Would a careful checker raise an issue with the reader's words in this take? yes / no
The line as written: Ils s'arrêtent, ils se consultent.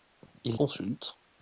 yes